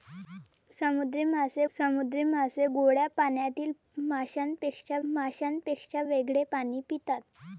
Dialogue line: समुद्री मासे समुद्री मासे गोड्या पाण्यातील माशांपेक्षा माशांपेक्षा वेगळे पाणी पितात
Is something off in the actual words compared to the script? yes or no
no